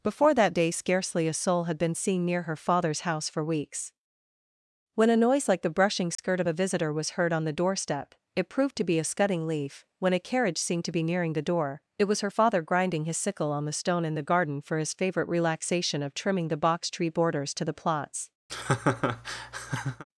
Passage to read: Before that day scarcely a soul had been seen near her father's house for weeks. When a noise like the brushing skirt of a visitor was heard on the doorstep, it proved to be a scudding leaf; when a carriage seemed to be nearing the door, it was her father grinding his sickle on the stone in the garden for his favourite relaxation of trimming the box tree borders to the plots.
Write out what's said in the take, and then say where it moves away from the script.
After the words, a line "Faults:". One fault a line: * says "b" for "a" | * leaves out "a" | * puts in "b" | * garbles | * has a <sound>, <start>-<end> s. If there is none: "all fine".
Before that day scarcely a soul had been seen near her father's house for weeks. When a noise like the brushing skirt of a visitor was heard on the doorstep, it proved to be a scudding leaf; when a carriage seemed to be nearing the door, it was her father grinding his sickle on the stone in the garden for his favourite relaxation of trimming the box tree borders to the plots.
Faults:
* has a dropout, 6.2-6.2 s
* has a laugh, 18.5-20.0 s